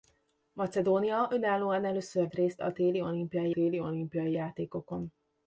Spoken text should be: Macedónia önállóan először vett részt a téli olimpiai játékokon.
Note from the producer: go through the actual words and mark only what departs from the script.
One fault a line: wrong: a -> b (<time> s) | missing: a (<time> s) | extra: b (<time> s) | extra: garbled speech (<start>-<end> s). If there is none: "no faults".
missing: vett (2.3 s)
extra: téli olimpiai (3.5 s)